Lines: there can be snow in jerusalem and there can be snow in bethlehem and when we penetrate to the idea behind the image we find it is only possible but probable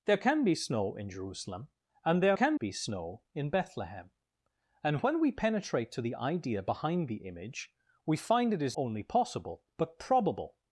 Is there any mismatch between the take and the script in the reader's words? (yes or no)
no